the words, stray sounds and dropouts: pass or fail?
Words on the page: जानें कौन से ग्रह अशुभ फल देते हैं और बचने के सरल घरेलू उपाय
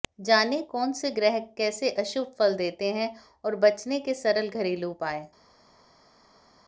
fail